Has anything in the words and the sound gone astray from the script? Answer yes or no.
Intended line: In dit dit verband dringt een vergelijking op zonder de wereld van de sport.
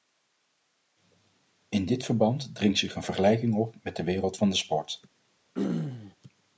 yes